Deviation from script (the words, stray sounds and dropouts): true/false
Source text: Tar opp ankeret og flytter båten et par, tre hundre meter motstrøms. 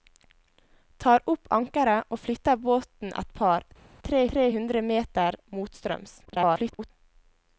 true